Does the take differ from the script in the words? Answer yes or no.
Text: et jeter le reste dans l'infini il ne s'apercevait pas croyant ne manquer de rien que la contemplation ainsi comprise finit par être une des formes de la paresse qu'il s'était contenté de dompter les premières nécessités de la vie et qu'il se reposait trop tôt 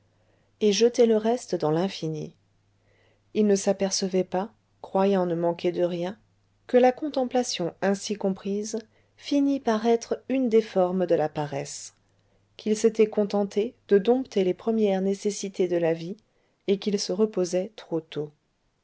no